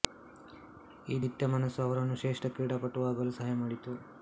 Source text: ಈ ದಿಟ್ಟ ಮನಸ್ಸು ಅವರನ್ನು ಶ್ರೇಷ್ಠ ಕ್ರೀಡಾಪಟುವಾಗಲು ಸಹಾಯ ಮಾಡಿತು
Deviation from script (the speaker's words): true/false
false